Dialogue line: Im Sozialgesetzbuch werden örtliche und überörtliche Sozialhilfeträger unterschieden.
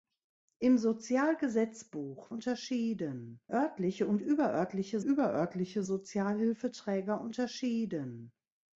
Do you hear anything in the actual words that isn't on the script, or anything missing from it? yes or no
yes